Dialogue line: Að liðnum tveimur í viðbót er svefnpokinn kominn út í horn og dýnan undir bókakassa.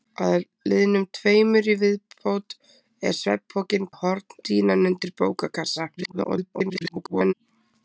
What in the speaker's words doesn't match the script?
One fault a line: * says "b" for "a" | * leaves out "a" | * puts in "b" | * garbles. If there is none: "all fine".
* leaves out "kominn út"
* leaves out "og"
* garbles